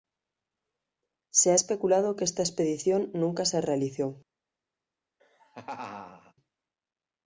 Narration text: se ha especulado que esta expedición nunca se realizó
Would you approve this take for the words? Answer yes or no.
yes